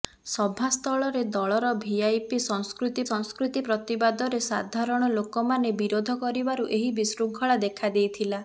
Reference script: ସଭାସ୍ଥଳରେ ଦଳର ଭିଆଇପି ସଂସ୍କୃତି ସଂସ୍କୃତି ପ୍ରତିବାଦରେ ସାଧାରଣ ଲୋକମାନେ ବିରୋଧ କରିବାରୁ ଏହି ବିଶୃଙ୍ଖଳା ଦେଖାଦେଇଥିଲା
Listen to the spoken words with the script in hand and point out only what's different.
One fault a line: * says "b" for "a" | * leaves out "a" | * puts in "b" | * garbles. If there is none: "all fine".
all fine